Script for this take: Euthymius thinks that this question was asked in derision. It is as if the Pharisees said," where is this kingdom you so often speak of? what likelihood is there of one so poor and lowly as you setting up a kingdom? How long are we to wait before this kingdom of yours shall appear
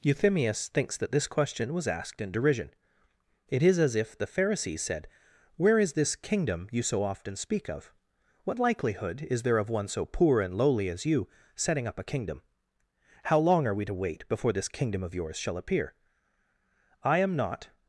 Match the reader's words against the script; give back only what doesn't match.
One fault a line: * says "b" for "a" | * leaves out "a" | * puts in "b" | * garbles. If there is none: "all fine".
* puts in "I am not"